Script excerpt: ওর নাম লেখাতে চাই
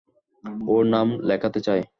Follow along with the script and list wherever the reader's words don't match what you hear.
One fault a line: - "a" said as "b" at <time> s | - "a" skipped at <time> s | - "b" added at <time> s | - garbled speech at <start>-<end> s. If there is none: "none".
none